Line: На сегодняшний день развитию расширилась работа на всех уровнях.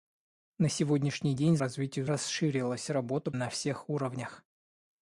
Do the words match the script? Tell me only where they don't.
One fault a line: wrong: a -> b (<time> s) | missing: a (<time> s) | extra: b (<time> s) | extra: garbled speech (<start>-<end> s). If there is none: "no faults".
no faults